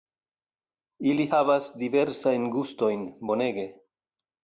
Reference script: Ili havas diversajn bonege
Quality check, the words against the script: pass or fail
fail